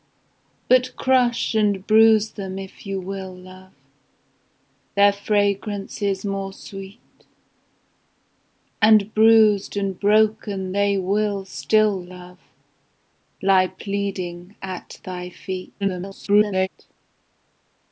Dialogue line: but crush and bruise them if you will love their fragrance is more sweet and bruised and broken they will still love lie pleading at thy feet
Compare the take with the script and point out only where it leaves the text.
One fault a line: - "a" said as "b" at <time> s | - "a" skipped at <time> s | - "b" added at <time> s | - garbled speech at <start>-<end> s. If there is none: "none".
- garbled speech at 15.8-16.7 s